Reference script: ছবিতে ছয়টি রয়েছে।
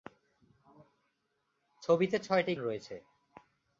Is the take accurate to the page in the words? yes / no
yes